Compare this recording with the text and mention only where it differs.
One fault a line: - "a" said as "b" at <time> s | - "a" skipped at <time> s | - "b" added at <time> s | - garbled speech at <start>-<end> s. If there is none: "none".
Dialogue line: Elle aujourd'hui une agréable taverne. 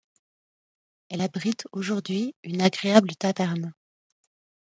- "abrite" added at 1.2 s